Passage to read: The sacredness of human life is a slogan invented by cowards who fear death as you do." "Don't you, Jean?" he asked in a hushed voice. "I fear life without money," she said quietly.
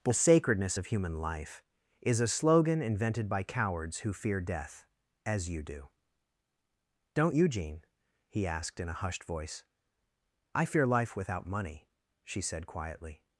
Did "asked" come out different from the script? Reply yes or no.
no